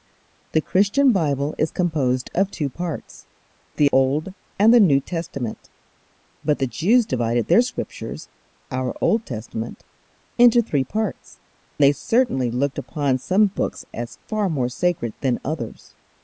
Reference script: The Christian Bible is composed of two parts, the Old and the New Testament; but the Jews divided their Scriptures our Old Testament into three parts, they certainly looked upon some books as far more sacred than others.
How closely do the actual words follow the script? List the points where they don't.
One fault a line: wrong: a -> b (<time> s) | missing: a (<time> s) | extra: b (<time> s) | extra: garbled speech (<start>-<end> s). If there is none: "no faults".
no faults